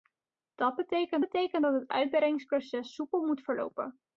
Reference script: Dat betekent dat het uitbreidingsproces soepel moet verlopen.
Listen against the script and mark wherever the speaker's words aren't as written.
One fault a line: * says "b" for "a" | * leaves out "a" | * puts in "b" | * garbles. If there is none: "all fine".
* puts in "betekent"